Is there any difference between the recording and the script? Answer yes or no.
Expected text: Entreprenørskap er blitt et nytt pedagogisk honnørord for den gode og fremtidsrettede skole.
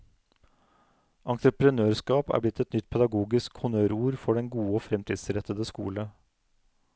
no